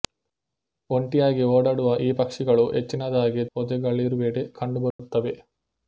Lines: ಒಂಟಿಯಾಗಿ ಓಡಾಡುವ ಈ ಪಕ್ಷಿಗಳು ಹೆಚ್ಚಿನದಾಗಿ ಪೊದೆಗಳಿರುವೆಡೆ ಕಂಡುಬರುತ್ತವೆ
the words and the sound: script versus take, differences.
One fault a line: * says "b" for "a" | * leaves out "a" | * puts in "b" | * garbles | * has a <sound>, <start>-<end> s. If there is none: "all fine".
* has a dropout, 4.9-5.0 s